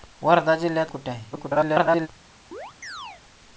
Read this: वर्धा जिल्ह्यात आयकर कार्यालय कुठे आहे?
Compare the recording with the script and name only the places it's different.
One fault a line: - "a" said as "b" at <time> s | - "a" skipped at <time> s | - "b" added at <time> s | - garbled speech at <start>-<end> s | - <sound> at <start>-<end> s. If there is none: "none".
- "आयकर कार्यालय" skipped at 0.9 s
- garbled speech at 1.3-2.1 s
- chirp at 2.5-3.2 s